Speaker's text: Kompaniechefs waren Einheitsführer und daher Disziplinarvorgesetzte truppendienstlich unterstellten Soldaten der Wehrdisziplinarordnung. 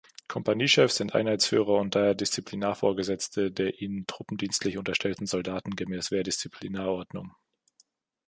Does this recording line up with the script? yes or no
no